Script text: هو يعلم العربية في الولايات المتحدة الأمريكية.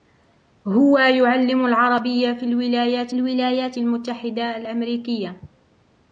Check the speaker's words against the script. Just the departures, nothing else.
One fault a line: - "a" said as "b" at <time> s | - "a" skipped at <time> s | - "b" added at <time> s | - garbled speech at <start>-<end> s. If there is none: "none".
- "الولايات" added at 3.1 s